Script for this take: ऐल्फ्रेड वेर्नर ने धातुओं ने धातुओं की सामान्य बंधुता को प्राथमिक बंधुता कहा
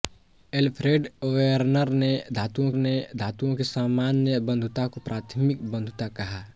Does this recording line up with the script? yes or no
yes